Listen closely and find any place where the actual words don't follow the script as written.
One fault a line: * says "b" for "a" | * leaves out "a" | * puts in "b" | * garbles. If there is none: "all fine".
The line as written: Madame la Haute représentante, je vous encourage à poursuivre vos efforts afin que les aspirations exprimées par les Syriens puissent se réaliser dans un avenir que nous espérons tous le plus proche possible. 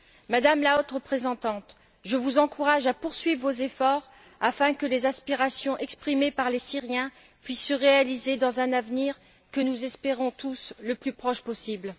all fine